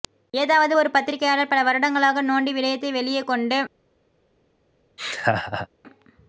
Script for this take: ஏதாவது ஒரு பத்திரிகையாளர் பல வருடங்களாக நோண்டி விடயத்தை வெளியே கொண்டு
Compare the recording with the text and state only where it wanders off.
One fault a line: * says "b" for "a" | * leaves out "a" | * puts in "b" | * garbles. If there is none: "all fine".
all fine